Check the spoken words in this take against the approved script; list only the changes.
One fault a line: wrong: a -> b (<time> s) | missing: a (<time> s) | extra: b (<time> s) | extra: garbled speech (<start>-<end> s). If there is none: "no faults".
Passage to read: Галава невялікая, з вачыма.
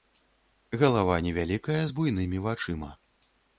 extra: буйнымі (2.0 s)